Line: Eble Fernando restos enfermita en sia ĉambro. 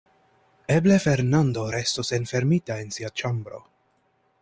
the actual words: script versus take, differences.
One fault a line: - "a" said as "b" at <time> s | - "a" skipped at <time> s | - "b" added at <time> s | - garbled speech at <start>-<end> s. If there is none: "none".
none